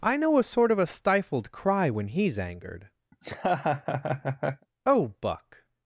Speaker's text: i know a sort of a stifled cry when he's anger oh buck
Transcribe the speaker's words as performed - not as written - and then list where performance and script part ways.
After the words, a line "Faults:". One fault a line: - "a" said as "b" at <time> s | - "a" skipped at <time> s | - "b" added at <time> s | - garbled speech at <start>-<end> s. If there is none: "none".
i know a sort of a stifled cry when he's angered oh buck
Faults:
- "anger" said as "angered" at 2.4 s